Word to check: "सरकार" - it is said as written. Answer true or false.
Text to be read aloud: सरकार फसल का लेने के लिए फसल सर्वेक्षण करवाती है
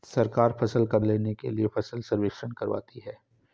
true